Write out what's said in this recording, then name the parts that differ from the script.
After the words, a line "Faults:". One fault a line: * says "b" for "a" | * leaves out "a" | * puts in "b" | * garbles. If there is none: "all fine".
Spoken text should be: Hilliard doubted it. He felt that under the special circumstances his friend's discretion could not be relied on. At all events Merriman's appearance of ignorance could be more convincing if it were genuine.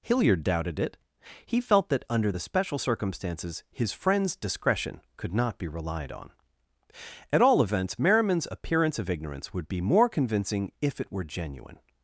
Hilliard doubted it. He felt that under the special circumstances his friend's discretion could not be relied on. At all events Merriman's appearance of ignorance would be more convincing if it were genuine.
Faults:
* says "would" for "could"